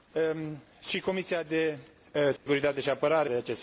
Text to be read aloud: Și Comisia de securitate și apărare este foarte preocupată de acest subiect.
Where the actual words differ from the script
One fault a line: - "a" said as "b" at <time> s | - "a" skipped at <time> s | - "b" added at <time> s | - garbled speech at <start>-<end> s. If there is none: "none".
- "este foarte preocupată" skipped at 3.3 s